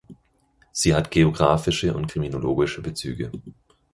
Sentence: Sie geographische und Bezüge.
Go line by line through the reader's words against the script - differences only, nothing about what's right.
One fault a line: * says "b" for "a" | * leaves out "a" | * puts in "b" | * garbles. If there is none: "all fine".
* puts in "hat"
* puts in "kriminologische"